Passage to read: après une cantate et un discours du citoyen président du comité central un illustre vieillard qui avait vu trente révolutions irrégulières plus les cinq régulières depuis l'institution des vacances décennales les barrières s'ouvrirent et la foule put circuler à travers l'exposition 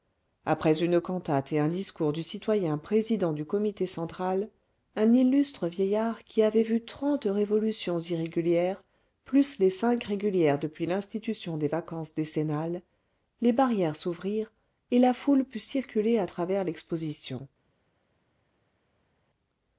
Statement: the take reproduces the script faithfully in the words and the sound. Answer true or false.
true